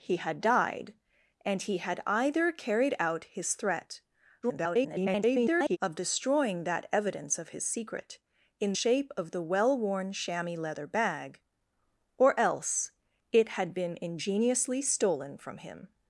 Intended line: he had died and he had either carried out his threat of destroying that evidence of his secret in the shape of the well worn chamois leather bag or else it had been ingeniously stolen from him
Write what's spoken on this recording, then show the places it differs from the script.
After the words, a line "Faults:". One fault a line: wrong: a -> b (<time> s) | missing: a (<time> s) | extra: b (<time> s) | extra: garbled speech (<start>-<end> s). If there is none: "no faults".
he had died and he had either carried out his threat [garbled] of destroying that evidence of his secret in shape of the well worn chamois leather bag or else it had been ingeniously stolen from him
Faults:
extra: garbled speech (4.4-5.8 s)
missing: the (8.7 s)